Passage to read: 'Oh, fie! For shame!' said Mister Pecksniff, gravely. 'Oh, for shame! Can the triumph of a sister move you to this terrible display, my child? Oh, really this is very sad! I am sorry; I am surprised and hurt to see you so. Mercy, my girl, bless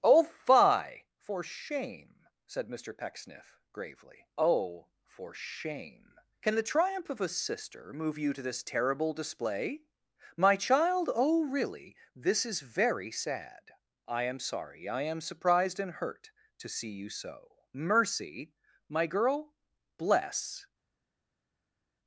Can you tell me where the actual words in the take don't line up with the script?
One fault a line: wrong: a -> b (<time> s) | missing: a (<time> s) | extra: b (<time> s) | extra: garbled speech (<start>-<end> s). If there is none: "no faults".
no faults